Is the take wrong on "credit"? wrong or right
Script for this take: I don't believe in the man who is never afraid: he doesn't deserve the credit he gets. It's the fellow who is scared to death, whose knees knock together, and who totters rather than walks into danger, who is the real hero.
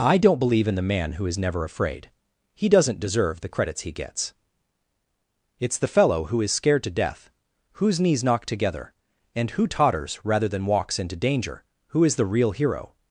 wrong